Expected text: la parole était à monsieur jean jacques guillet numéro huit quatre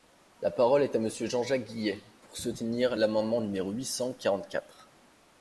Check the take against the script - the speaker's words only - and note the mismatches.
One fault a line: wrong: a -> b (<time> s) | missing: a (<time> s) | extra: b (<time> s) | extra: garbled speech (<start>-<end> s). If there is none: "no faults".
wrong: était -> est (0.8 s)
extra: pour soutenir l'amendement (2.2 s)
extra: cent quarante (3.8 s)